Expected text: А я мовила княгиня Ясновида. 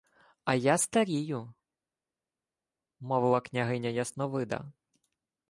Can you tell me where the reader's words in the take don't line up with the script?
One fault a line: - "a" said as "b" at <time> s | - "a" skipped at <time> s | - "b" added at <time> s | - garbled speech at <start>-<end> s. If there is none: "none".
- "старію" added at 0.8 s